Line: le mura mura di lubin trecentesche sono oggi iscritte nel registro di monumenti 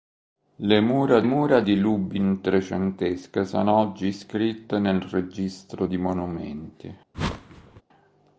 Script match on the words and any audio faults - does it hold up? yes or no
no